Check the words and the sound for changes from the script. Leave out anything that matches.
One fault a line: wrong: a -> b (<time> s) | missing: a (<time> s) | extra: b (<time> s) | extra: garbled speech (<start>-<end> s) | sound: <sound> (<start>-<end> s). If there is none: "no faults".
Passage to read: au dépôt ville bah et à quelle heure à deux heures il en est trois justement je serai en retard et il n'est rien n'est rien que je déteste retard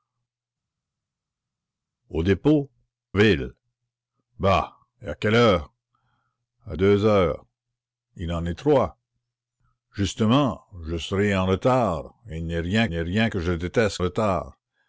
no faults